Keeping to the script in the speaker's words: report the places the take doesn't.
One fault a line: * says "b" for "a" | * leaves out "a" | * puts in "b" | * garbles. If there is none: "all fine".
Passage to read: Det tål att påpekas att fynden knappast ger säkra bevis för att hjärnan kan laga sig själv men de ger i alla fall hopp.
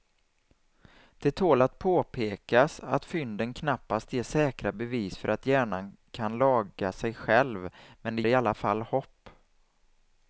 * leaves out "ger"